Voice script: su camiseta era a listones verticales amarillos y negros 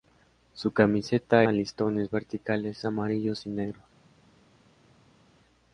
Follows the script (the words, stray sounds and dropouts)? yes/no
no